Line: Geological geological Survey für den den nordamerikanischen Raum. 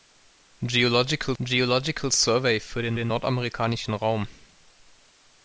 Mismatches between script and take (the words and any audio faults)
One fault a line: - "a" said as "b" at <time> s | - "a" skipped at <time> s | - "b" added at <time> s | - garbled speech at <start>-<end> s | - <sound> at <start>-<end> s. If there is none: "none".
none